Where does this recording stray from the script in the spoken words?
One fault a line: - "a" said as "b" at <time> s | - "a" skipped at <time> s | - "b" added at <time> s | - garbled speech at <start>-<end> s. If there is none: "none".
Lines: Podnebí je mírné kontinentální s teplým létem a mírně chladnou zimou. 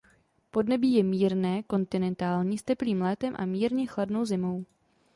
none